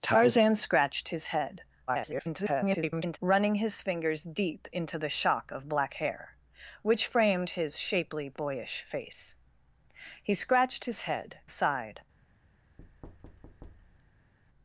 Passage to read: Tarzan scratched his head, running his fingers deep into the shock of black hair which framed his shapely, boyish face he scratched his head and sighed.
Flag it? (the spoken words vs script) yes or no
yes